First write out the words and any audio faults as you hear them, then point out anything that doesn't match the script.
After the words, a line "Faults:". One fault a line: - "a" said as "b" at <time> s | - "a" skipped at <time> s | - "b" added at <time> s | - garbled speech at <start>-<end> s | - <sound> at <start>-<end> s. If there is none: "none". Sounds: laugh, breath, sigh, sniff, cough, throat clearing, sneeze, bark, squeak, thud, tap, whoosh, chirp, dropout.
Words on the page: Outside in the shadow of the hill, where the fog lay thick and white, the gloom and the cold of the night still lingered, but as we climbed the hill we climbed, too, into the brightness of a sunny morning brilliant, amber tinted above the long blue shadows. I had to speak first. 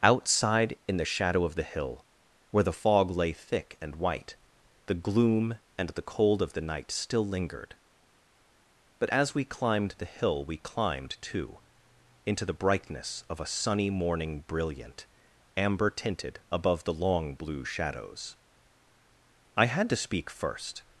Outside in the shadow of the hill, where the fog lay thick and white, the gloom and the cold of the night still lingered, but as we climbed the hill we climbed, too, into the brightness of a sunny morning brilliant, amber tinted above the long blue shadows. I had to speak first.
Faults:
none